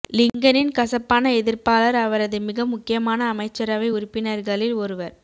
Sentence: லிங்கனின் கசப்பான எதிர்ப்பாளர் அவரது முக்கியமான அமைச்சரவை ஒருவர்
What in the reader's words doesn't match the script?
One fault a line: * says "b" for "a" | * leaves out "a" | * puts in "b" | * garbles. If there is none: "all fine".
* puts in "மிக"
* puts in "உறுப்பினர்களில்"